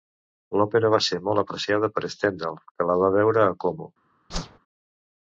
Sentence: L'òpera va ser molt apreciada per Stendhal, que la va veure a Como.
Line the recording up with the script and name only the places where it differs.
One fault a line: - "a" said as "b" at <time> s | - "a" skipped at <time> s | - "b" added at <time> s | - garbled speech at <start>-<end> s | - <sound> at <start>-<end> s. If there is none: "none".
- whoosh at 4.3-4.6 s